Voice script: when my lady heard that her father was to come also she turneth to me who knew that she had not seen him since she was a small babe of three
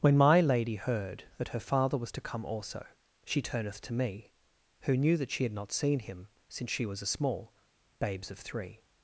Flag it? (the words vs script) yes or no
yes